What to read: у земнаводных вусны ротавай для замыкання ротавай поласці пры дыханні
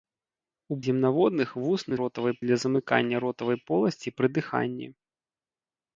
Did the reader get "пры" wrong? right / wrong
right